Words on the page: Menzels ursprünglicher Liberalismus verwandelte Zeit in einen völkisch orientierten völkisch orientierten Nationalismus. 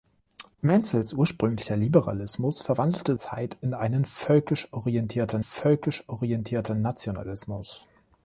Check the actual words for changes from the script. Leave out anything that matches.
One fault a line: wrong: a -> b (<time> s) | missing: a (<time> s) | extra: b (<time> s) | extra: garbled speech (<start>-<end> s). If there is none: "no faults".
no faults